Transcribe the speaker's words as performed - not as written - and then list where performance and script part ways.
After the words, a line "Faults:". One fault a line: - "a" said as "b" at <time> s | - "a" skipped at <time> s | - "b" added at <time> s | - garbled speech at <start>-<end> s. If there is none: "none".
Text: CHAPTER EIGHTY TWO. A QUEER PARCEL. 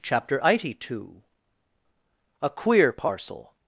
CHAPTER EIGHTY TWO. A QUEER PARCEL.
Faults:
none